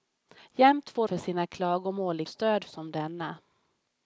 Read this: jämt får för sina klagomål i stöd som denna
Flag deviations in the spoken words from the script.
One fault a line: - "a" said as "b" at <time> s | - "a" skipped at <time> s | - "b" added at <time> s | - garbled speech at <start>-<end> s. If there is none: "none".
none